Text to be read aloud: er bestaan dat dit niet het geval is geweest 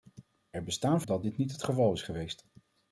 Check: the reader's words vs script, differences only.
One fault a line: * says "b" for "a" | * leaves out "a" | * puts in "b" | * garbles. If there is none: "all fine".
all fine